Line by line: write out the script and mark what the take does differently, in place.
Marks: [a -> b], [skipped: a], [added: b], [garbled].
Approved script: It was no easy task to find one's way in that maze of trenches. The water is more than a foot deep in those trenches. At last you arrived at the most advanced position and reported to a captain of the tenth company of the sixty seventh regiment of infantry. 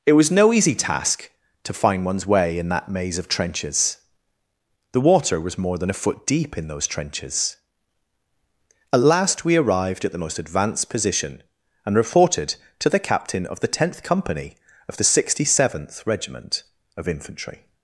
It was no easy task to find one's way in that maze of trenches. The water [is -> was] more than a foot deep in those trenches. At last [you -> we] arrived at the most advanced position and reported to [a -> the] captain of the tenth company of the sixty seventh regiment of infantry.